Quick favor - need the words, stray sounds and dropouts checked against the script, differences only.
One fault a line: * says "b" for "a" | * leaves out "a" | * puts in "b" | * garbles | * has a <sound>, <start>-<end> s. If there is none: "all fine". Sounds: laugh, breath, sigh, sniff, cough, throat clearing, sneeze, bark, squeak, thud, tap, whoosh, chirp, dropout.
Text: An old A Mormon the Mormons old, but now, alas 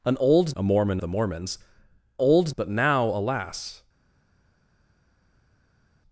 all fine